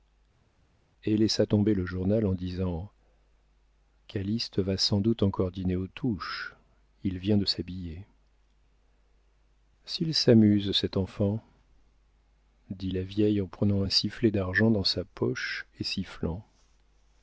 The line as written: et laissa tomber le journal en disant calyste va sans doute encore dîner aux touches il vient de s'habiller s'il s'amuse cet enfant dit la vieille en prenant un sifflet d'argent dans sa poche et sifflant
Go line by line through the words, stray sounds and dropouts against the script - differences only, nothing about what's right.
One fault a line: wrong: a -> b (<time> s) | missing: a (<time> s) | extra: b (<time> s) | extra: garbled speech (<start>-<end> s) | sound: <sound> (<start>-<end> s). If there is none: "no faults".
no faults